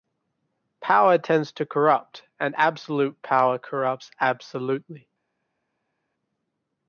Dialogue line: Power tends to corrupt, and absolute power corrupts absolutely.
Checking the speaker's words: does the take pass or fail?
pass